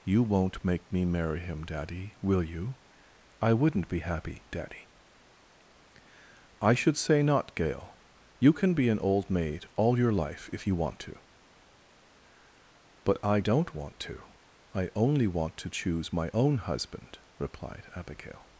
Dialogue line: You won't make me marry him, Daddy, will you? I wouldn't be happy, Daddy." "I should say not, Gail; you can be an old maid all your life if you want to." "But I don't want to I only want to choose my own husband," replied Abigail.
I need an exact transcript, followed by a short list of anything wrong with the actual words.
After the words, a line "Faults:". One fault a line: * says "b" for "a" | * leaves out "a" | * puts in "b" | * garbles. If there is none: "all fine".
You won't make me marry him, Daddy, will you? I wouldn't be happy, Daddy." "I should say not, Gail; you can be an old maid all your life if you want to." "But I don't want to I only want to choose my own husband," replied Abigail.
Faults:
all fine